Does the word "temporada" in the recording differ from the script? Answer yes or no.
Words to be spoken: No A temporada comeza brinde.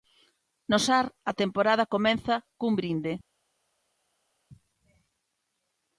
no